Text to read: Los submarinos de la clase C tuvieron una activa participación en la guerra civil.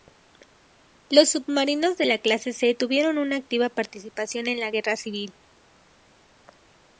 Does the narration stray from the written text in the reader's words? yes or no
no